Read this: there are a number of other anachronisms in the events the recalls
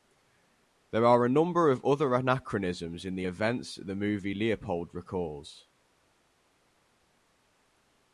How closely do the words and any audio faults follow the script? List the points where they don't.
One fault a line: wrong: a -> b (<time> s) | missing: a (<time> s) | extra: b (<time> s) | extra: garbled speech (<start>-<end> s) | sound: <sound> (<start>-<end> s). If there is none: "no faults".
extra: movie leopold (4.0 s)